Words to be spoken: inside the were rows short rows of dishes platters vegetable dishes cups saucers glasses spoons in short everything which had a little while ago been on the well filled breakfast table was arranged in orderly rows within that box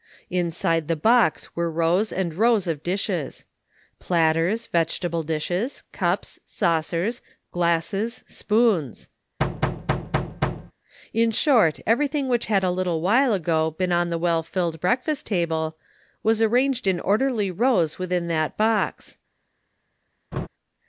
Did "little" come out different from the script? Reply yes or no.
no